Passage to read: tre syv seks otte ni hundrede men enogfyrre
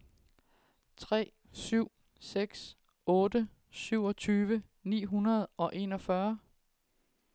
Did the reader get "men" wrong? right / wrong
wrong